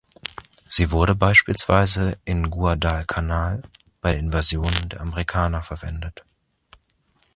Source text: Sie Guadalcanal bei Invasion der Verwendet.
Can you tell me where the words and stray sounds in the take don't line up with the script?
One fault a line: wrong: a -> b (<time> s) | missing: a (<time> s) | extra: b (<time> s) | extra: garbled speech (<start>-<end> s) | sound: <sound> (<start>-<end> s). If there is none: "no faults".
extra: wurde beispielsweise in (0.9 s)
extra: der (4.1 s)
extra: Amerikaner (5.0 s)